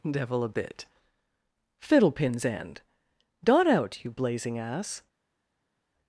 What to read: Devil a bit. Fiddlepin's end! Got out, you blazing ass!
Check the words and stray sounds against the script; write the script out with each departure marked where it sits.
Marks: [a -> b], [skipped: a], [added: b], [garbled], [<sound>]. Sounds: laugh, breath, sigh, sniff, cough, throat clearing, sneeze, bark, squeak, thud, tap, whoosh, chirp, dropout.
Devil a bit. Fiddlepin's end! [Got -> Dot] out, you blazing ass!